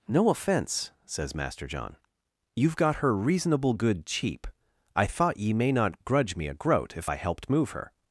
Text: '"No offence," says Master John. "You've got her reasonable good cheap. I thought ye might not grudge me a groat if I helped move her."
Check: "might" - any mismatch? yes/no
yes